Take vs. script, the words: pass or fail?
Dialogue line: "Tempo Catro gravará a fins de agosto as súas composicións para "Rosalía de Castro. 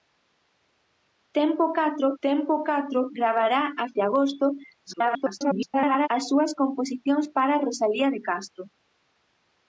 fail